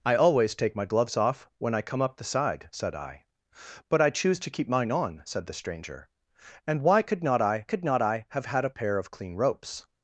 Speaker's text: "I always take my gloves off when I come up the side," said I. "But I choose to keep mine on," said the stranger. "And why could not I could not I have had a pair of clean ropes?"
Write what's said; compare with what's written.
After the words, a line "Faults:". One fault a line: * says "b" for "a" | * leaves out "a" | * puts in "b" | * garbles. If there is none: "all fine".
"I always take my gloves off when I come up the side," said I. "But I choose to keep mine on," said the stranger. "And why could not I could not I have had a pair of clean ropes?"
Faults:
all fine